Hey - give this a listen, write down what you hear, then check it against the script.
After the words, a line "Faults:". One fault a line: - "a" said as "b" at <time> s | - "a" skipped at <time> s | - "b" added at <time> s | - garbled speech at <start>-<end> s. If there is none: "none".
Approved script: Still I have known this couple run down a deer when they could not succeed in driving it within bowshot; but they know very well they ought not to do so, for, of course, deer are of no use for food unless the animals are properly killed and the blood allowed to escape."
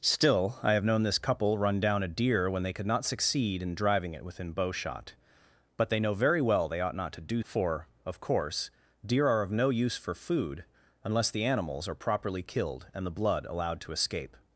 Still I have known this couple run down a deer when they could not succeed in driving it within bowshot; but they know very well they ought not to do for, of course, deer are of no use for food unless the animals are properly killed and the blood allowed to escape."
Faults:
- "so" skipped at 7.4 s